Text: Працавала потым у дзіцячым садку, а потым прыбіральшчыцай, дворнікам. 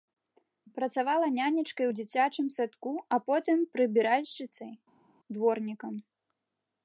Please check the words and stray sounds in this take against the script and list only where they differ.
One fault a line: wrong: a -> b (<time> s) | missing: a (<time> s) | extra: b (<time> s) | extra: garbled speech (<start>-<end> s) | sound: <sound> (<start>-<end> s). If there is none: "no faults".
wrong: потым -> нянечкай (1.4 s)